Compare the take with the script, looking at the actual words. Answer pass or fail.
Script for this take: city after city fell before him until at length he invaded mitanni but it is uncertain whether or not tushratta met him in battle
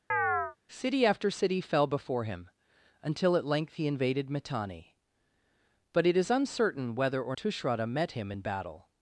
fail